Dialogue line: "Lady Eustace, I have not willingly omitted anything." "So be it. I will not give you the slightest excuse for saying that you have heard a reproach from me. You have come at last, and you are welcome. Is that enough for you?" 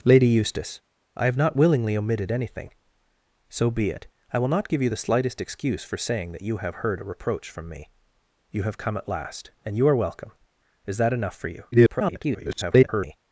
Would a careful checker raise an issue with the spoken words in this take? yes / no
yes